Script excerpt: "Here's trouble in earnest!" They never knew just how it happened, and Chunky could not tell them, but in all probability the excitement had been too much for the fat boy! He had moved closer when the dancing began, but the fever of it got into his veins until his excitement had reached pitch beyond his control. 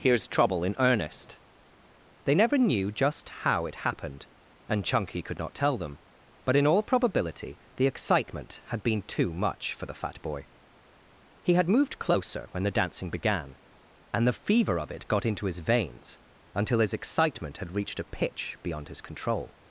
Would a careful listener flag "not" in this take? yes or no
no